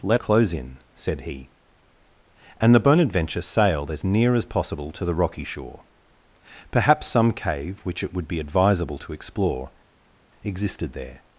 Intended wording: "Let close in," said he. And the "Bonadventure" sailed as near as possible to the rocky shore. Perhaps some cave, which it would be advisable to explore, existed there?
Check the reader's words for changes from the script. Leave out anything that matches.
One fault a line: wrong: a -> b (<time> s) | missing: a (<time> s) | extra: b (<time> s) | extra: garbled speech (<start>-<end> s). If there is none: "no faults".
no faults